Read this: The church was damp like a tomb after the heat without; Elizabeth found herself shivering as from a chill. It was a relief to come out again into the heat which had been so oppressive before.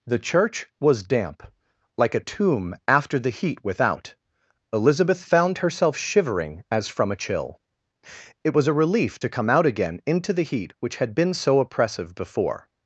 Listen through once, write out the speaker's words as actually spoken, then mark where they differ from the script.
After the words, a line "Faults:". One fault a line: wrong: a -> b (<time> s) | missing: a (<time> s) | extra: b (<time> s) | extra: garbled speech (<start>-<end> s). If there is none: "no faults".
The church was damp like a tomb after the heat without; Elizabeth found herself shivering as from a chill. It was a relief to come out again into the heat which had been so oppressive before.
Faults:
no faults